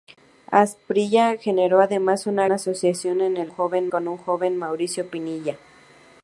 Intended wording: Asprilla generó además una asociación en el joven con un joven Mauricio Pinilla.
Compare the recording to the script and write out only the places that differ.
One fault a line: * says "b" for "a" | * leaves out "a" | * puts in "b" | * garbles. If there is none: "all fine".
all fine